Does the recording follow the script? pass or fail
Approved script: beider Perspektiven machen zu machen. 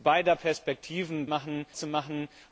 pass